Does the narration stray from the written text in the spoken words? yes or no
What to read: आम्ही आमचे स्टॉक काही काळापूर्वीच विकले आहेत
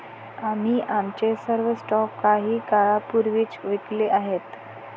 yes